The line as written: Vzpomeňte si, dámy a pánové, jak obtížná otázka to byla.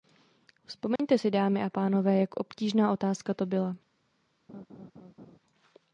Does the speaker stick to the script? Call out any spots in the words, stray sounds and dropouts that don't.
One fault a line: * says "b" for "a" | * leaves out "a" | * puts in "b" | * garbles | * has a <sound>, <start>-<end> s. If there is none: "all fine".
* has a dropout, 1.0-1.0 s
* has a laugh, 4.5-5.4 s